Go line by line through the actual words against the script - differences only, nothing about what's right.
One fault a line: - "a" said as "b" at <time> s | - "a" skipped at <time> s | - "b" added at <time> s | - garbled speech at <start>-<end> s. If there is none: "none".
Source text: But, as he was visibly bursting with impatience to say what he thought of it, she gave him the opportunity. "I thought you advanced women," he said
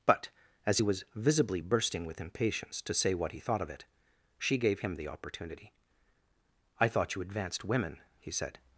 none